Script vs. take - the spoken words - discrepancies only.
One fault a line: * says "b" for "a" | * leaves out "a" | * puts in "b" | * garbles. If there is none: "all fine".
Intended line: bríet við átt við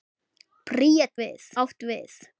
all fine